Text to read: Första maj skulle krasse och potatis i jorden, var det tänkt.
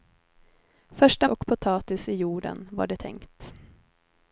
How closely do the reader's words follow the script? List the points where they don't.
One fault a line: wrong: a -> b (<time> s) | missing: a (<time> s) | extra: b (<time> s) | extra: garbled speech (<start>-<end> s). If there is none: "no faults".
missing: maj skulle krasse (1.3 s)